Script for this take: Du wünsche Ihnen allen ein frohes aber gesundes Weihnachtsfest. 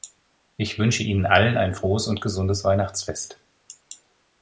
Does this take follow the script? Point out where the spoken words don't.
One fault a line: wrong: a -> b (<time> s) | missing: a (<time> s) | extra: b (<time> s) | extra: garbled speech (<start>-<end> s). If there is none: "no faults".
wrong: Du -> Ich (0.6 s)
wrong: aber -> und (2.1 s)